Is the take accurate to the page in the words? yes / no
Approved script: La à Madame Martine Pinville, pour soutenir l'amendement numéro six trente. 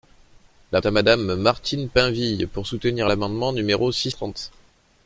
yes